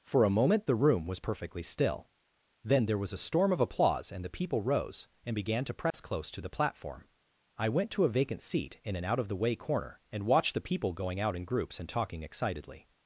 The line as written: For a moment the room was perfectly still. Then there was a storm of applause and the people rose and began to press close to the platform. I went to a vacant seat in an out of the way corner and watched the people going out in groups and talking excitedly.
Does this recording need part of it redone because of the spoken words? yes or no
no